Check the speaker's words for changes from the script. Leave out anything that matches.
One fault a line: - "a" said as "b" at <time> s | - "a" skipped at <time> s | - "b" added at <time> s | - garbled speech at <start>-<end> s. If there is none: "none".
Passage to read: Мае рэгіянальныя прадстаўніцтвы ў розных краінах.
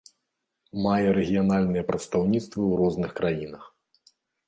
none